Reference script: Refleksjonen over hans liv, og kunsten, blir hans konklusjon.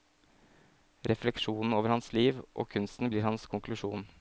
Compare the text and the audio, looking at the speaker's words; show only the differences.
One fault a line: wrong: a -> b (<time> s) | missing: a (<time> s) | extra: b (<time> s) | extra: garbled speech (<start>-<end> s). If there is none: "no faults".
no faults